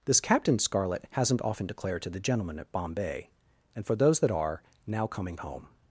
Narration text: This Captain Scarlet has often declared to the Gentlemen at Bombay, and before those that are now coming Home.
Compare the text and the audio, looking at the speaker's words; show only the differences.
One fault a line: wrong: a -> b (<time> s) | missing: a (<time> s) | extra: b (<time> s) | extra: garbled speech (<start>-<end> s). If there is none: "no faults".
wrong: has -> hasn't (1.1 s)
wrong: before -> for (3.9 s)